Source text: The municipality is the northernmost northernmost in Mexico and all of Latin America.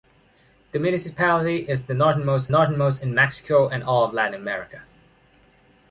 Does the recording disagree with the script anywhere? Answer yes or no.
no